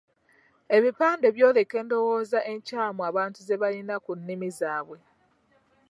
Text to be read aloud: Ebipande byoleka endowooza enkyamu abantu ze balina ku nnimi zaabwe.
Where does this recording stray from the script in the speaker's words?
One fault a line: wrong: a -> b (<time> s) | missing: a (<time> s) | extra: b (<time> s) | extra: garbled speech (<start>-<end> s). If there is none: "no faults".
no faults